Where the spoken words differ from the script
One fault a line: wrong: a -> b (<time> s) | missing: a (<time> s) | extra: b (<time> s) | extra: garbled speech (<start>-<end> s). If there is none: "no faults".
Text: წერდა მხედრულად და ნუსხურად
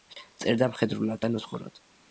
no faults